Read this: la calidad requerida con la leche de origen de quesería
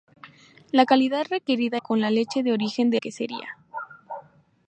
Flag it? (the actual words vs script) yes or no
no